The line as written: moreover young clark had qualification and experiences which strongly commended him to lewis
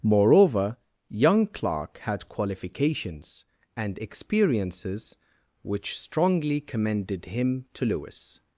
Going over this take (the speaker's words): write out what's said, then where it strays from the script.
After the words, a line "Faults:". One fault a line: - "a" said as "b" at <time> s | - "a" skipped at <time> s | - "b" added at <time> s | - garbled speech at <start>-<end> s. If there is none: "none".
moreover young clark had qualifications and experiences which strongly commended him to lewis
Faults:
- "qualification" said as "qualifications" at 2.3 s